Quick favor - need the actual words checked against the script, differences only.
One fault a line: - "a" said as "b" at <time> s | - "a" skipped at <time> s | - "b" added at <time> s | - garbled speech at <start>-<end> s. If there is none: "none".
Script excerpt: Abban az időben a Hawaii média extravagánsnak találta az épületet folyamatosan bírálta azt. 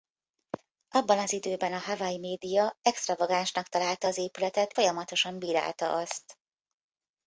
none